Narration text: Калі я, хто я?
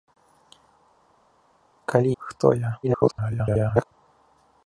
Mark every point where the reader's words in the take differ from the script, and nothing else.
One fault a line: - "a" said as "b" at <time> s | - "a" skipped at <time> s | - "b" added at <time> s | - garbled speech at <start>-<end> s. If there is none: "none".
- "я" skipped at 2.2 s
- garbled speech at 2.8-3.8 s